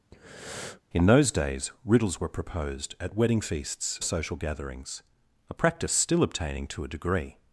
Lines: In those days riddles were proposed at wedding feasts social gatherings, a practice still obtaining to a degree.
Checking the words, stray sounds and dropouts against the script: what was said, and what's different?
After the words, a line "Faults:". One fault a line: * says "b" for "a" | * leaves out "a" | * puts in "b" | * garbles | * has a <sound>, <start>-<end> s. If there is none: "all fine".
In those days riddles were proposed at wedding feasts social gatherings, a practice still obtaining to a degree.
Faults:
* has a breath, 0.1-0.8 s